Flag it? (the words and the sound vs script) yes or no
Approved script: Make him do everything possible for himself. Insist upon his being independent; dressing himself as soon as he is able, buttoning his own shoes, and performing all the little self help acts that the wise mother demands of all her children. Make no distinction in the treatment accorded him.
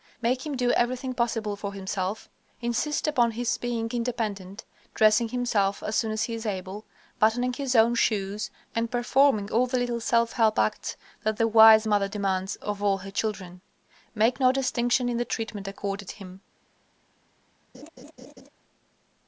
yes